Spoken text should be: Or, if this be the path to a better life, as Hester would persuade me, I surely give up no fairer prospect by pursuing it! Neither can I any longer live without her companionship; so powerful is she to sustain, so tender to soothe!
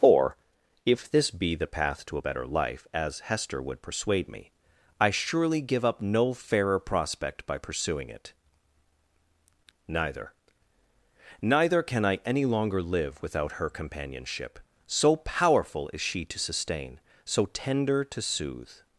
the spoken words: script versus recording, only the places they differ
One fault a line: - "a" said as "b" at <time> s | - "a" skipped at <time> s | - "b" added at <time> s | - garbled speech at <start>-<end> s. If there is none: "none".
- "Neither" added at 11.4 s